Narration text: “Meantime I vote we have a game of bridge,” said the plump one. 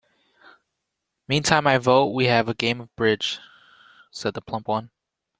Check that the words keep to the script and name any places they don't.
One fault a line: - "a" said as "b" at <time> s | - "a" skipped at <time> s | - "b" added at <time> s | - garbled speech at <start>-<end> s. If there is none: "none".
none